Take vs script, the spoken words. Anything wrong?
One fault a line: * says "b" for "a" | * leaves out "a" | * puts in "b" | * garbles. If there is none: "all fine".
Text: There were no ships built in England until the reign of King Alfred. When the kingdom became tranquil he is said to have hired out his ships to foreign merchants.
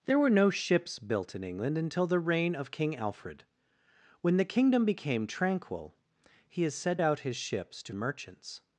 * leaves out "to have hired"
* leaves out "foreign"